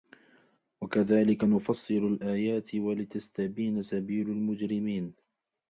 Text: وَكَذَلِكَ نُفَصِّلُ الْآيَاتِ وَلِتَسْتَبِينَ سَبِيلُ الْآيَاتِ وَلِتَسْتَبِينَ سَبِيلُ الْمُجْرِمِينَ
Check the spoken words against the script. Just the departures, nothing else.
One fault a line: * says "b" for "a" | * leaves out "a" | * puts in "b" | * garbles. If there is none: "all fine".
* leaves out "الْآيَاتِ وَلِتَسْتَبِينَ سَبِيلُ"